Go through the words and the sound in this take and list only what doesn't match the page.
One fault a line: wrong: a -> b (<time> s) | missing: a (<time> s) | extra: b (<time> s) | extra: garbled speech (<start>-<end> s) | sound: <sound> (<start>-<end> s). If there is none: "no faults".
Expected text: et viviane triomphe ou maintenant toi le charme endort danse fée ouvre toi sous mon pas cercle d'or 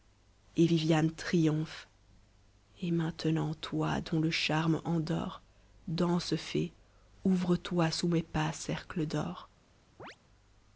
wrong: ou -> et (2.8 s)
extra: dont (4.0 s)
wrong: mon -> mes (8.1 s)
sound: chirp (10.0-10.2 s)